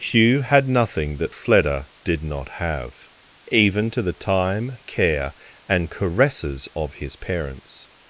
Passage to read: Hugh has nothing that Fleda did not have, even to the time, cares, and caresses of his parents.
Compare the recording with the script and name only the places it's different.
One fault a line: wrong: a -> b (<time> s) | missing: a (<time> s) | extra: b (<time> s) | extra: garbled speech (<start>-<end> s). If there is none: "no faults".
wrong: has -> had (0.4 s)
wrong: cares -> care (4.8 s)